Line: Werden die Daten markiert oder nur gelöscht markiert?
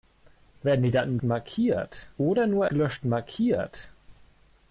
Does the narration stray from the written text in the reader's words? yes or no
no